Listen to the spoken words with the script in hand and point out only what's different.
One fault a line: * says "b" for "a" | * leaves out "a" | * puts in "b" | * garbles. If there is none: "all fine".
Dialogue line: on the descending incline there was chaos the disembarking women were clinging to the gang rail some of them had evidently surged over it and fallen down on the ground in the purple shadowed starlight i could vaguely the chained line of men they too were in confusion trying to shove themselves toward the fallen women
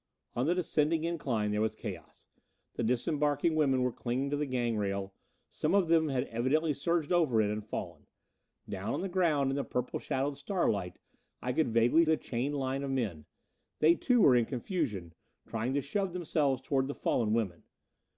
all fine